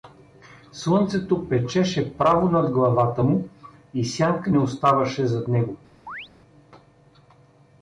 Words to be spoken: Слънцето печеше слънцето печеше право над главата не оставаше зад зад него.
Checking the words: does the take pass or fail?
fail